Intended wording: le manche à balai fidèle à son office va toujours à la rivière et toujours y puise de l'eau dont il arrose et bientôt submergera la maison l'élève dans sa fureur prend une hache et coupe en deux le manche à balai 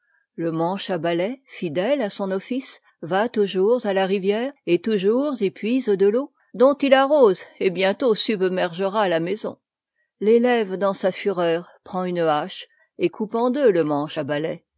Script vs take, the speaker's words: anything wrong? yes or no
no